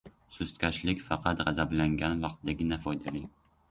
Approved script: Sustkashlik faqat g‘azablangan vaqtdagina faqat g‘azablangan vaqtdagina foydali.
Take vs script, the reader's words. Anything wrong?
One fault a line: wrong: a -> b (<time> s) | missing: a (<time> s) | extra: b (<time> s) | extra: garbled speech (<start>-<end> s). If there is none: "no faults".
missing: faqat g‘azablangan vaqtdagina (2.8 s)